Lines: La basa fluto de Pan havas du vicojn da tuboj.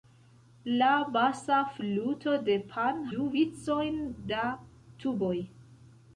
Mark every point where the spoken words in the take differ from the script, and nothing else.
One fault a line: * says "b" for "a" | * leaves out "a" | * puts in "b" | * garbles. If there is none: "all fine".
* leaves out "havas"